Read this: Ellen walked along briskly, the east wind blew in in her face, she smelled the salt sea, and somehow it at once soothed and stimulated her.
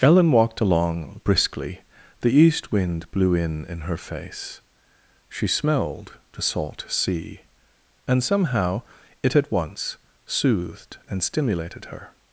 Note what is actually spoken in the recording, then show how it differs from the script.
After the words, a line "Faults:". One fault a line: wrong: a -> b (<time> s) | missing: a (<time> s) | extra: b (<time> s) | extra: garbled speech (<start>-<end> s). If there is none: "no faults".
Ellen walked along briskly, the east wind blew in in her face, she smelled the salt sea, and somehow it at once soothed and stimulated her.
Faults:
no faults